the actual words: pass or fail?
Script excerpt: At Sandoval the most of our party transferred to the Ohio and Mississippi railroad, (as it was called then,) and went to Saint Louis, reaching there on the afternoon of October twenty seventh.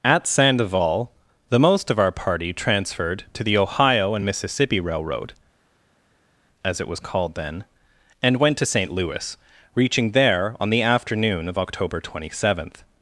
pass